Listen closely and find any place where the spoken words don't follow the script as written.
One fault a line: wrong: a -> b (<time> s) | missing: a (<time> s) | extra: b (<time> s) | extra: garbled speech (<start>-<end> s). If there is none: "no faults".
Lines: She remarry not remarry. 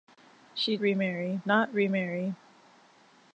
no faults